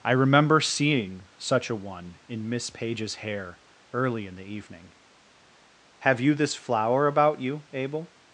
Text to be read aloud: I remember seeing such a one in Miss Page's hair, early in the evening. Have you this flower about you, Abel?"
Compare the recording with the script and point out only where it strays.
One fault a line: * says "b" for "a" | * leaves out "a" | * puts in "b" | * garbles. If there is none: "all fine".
all fine